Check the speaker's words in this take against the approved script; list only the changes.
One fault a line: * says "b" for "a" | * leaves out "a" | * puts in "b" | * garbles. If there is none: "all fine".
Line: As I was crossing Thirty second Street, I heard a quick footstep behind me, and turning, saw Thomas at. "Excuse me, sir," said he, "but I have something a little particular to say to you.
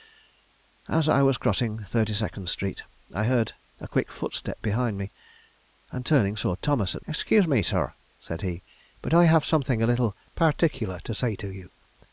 all fine